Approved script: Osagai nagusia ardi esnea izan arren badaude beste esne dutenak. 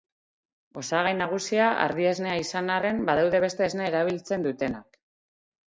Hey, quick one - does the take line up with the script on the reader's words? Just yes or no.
no